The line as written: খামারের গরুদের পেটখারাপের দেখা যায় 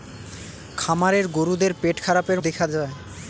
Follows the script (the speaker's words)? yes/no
yes